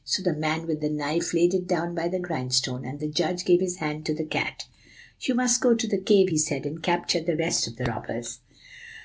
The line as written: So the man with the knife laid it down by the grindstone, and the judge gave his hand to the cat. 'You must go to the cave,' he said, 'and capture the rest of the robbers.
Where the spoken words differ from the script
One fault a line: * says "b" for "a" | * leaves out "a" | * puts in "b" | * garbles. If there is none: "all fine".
all fine